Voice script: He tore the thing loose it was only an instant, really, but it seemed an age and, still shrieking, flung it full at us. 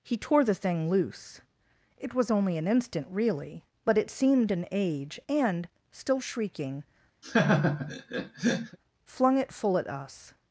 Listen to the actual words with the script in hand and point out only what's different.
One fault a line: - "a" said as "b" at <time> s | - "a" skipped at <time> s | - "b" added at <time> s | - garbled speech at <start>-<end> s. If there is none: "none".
none